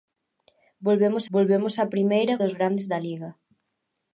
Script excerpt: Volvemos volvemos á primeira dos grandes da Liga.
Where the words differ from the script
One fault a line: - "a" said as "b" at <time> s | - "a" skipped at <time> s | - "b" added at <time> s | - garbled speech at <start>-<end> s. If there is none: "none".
none